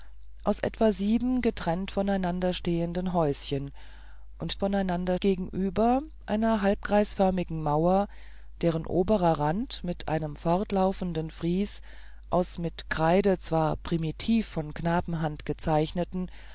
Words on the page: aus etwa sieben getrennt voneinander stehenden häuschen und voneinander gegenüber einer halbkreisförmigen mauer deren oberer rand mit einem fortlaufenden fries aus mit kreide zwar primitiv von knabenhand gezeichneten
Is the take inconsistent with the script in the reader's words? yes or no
no